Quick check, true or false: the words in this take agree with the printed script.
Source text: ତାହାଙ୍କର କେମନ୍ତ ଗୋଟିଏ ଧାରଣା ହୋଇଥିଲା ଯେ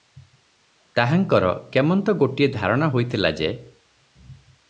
true